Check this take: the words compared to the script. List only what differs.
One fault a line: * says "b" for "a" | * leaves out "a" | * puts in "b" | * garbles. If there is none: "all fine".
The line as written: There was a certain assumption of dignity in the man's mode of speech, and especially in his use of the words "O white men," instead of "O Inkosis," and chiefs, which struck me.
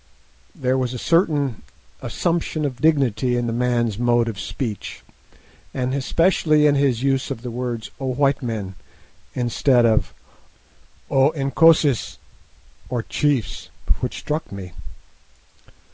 * says "or" for "and"